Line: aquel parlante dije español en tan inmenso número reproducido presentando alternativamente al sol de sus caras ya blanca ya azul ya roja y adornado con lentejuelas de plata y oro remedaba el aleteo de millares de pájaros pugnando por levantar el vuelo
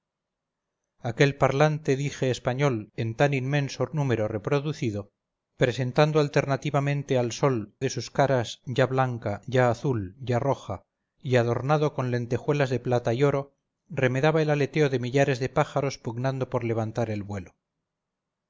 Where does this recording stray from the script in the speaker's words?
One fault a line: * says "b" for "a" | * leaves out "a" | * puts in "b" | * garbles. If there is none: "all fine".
all fine